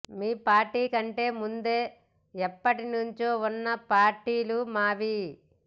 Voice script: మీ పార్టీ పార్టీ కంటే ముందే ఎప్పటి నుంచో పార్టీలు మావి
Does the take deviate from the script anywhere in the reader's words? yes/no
yes